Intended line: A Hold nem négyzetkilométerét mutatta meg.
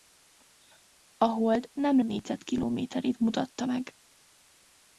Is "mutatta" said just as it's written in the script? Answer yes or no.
yes